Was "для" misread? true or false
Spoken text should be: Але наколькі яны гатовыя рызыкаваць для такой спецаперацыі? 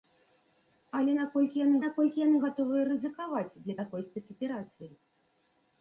false